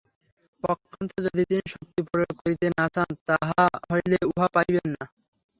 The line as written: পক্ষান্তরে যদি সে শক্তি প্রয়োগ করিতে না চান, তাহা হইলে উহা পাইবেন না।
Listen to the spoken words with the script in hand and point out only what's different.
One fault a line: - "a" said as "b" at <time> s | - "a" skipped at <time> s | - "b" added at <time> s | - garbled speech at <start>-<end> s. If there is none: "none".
- "সে" said as "তিনি" at 1.5 s